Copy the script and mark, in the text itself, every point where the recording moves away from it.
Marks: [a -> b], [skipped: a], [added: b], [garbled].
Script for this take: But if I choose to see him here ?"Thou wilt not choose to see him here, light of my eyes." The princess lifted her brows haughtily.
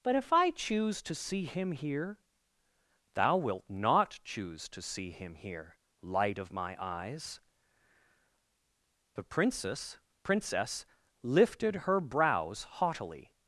But if I choose to see him here ?"Thou wilt not choose to see him here, light of my eyes." The princess [added: princess] lifted her brows haughtily.